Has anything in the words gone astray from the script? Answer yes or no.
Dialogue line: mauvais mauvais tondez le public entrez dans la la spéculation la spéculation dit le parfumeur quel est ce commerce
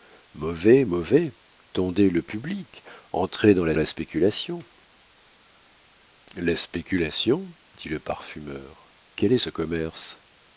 no